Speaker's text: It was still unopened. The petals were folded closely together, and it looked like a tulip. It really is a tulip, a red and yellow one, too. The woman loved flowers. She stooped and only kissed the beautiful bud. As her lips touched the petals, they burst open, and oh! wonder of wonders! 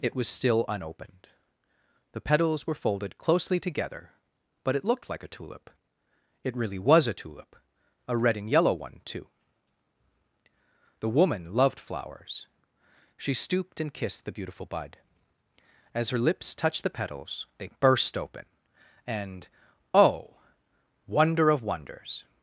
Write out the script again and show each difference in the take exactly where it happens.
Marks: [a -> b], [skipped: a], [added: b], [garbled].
It was still unopened. The petals were folded closely together, [and -> but] it looked like a tulip. It really [is -> was] a tulip, a red and yellow one, too. The woman loved flowers. She stooped and [skipped: only] kissed the beautiful bud. As her lips touched the petals, they burst open, and oh! wonder of wonders!